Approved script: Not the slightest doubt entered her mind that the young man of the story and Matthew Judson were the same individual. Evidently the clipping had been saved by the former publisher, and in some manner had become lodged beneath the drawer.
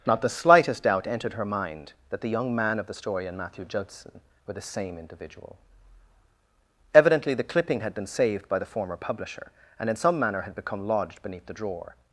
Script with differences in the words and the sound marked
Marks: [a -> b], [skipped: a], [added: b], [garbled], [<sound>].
Not the slightest doubt entered her mind that the young man of the story and Matthew Judson were the same individual. Evidently the clipping had been saved by the former publisher, and in some manner had become lodged beneath the drawer.